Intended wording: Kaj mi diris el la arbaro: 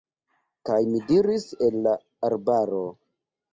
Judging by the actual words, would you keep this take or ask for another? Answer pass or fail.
pass